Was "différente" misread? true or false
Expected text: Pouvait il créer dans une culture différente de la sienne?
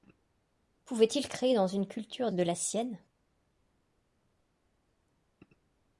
true